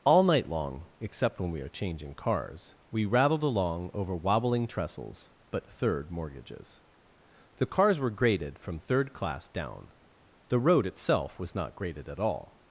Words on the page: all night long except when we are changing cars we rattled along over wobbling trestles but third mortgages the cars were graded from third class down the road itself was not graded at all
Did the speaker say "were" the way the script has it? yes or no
yes